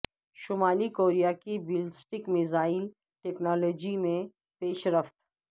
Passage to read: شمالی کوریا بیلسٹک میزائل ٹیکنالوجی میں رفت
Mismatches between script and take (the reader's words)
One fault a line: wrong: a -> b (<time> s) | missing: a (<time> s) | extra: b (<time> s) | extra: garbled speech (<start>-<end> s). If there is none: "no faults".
extra: کی (1.4 s)
extra: پیش (4.6 s)